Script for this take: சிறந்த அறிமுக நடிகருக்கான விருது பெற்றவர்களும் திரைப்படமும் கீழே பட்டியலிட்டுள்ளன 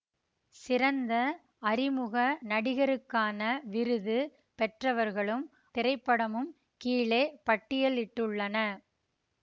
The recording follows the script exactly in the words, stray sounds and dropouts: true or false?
true